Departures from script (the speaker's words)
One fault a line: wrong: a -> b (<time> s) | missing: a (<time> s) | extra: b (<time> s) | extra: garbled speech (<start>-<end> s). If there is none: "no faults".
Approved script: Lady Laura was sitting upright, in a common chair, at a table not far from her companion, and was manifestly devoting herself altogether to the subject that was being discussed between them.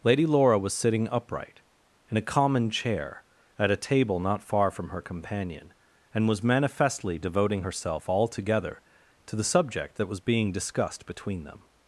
no faults